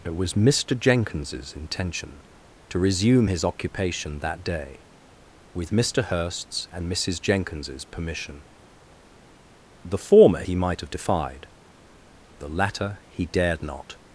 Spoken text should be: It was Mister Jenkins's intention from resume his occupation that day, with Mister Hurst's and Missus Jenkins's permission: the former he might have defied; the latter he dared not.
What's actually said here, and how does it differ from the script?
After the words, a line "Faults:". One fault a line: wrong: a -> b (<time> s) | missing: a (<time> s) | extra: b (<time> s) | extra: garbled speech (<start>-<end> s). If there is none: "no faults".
It was Mister Jenkins's intention to resume his occupation that day, with Mister Hurst's and Missus Jenkins's permission: the former he might have defied; the latter he dared not.
Faults:
wrong: from -> to (2.7 s)